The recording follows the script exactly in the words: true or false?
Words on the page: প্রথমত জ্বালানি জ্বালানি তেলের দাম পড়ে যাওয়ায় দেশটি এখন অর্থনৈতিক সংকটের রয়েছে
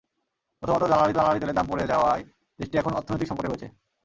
true